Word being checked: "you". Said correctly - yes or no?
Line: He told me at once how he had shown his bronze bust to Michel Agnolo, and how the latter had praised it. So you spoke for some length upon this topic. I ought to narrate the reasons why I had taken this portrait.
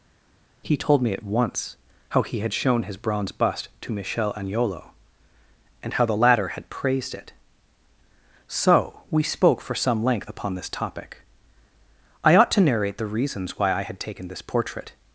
no